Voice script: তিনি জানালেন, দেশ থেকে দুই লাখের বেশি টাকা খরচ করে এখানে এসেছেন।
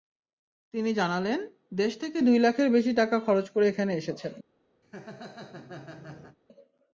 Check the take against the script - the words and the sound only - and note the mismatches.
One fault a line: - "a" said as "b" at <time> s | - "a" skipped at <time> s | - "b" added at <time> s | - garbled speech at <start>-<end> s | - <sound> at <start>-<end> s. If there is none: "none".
- laugh at 4.8-6.4 s